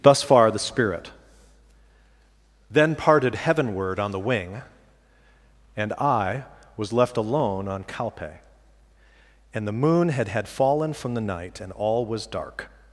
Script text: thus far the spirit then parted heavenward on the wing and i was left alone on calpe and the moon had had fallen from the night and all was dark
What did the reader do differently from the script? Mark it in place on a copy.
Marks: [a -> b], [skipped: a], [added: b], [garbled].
thus far the spirit then parted heavenward on the wing and i was left alone on calpe and the moon had had fallen from the night and all was dark